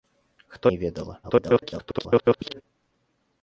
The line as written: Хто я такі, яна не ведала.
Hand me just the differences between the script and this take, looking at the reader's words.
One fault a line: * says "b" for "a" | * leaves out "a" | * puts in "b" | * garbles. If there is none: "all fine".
* leaves out "я такі яна"
* garbles